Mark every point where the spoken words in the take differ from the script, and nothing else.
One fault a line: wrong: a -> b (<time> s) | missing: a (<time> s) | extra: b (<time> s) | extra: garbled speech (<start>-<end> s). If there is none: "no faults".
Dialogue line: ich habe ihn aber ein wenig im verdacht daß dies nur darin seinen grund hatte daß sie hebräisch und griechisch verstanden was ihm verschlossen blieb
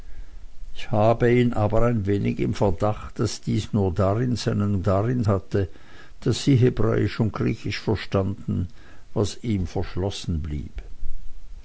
wrong: grund -> darin (4.8 s)